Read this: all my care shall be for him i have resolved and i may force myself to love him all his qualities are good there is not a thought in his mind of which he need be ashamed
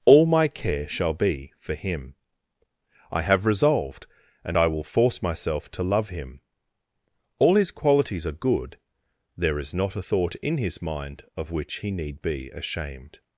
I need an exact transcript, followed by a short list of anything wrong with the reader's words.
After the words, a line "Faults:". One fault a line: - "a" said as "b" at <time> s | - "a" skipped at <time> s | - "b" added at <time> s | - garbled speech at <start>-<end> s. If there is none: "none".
all my care shall be for him i have resolved and i will force myself to love him all his qualities are good there is not a thought in his mind of which he need be ashamed
Faults:
- "may" said as "will" at 4.7 s